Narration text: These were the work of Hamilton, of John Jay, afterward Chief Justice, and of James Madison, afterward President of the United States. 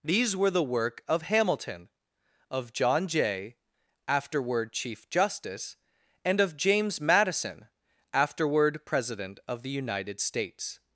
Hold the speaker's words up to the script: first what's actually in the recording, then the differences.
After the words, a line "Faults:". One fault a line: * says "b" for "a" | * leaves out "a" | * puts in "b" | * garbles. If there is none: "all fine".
These were the work of Hamilton, of John Jay, afterward Chief Justice, and of James Madison, afterward President of the United States.
Faults:
all fine